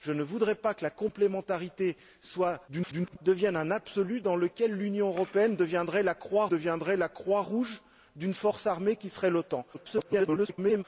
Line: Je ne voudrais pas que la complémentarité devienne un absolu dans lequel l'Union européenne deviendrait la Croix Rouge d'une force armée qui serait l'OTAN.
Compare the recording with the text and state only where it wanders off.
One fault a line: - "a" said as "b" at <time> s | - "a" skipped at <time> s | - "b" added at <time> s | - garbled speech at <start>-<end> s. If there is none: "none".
- garbled speech at 2.7-3.2 s
- "deviendrait la Croix" added at 6.5 s
- garbled speech at 9.7-10.8 s